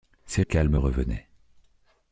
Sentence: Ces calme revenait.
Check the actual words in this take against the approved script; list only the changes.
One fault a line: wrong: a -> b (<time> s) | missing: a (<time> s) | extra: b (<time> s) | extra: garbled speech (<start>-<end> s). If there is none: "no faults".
no faults